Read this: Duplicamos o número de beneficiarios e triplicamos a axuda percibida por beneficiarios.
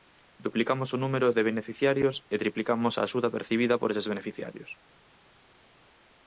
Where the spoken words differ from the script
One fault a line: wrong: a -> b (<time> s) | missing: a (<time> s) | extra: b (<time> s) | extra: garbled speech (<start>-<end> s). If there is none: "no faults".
extra: eses (3.9 s)